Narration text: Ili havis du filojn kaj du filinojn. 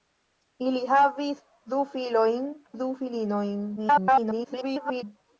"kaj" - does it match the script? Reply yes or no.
no